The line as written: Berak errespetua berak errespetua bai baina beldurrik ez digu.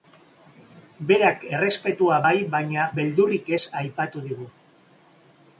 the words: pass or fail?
fail